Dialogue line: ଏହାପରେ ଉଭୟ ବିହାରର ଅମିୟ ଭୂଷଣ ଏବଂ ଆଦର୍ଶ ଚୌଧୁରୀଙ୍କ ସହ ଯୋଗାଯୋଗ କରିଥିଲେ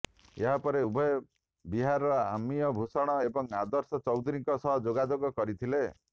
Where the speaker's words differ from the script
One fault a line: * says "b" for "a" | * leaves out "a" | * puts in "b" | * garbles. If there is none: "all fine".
all fine